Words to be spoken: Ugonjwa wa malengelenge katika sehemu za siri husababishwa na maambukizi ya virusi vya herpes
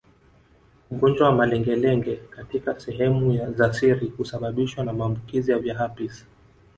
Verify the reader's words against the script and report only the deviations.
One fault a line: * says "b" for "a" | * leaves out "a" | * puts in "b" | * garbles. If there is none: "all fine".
* leaves out "virusi"